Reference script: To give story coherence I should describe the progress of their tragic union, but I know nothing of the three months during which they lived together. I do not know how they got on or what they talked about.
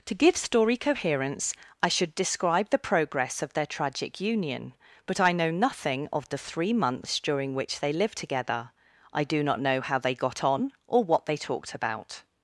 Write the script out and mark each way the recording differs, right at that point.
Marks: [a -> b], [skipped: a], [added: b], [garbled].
To give story coherence I should describe the progress of their tragic union, but I know nothing of the three months during which they lived together. I do not know how they got on or what they talked about.